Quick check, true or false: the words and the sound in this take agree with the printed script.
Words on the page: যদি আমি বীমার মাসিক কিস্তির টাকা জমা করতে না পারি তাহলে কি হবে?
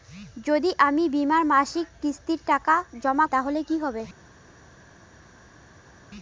false